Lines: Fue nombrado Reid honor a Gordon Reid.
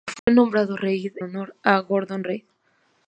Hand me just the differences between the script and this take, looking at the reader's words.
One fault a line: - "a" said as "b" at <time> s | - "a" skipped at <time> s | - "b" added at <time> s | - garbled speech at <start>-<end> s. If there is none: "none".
none